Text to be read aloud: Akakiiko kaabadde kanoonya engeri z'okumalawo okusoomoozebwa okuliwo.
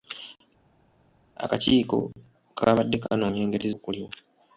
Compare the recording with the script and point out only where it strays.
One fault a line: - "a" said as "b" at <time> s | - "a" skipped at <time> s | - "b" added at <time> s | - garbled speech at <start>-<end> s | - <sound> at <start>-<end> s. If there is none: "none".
- "z'okumalawo okusoomoozebwa" skipped at 3.7 s